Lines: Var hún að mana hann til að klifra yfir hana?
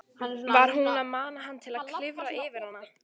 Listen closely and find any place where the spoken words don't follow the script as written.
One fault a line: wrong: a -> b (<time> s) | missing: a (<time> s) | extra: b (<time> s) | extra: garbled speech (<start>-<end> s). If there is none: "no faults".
no faults